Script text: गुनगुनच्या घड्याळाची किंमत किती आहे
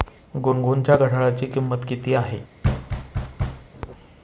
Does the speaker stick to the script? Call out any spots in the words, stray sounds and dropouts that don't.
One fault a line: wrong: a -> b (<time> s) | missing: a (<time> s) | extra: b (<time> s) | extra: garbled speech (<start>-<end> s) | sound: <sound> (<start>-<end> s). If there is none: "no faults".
sound: thud (2.6-3.7 s)